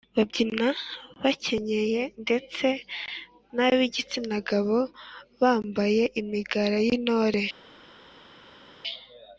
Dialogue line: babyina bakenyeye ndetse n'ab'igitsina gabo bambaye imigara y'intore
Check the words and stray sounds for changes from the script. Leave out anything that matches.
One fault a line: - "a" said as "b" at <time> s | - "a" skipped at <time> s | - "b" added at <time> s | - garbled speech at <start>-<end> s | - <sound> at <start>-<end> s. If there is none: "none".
none